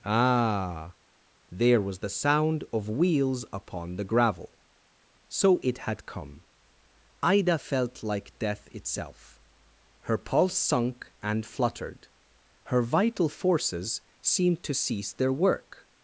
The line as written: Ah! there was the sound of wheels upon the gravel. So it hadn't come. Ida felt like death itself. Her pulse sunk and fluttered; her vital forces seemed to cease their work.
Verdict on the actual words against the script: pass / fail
fail